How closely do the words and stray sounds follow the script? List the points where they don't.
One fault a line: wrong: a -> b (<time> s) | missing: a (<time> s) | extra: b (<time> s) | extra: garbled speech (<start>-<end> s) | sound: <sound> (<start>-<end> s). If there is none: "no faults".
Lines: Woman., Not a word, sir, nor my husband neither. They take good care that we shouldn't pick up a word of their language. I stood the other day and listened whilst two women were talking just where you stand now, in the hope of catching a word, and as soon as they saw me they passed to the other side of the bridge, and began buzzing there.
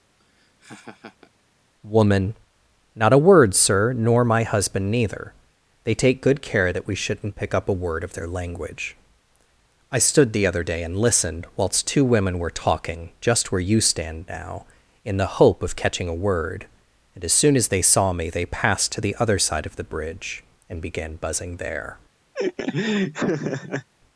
sound: laugh (0.2-1.3 s)
sound: laugh (22.3-23.9 s)